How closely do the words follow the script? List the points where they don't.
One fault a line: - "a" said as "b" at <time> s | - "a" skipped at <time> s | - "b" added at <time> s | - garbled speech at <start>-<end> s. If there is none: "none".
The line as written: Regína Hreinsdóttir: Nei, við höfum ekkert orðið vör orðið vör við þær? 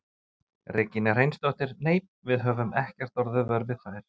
- "orðið vör" skipped at 3.7 s